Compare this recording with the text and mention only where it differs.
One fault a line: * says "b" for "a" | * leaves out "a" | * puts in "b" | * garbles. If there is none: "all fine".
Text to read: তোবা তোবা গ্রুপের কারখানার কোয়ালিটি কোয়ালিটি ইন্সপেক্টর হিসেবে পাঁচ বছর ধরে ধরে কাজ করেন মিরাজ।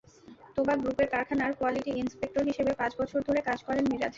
* leaves out "তোবা"
* leaves out "কোয়ালিটি"
* leaves out "ধরে"